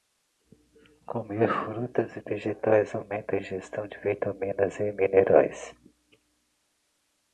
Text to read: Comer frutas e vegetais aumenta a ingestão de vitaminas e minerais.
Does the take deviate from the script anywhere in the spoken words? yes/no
no